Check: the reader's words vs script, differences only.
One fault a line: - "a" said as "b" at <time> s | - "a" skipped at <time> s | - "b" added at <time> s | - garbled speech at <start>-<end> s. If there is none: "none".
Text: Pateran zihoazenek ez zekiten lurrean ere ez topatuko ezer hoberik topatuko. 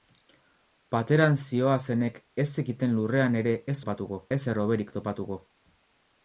none